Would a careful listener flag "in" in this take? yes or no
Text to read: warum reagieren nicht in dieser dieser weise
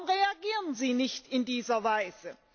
no